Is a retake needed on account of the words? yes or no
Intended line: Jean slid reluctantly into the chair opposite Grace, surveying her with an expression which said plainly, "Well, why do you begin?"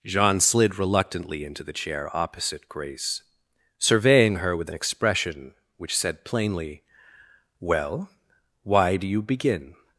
no